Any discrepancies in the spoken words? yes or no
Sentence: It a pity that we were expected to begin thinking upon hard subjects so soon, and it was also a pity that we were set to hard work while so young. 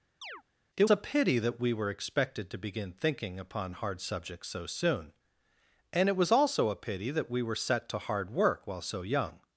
no